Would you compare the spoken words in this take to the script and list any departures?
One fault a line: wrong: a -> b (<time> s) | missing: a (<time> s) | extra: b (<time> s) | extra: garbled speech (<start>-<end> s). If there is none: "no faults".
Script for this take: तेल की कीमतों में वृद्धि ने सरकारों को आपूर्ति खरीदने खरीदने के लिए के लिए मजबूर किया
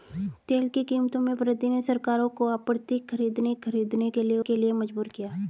no faults